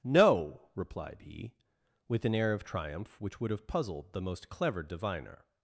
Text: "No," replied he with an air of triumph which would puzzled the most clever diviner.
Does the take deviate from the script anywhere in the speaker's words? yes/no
yes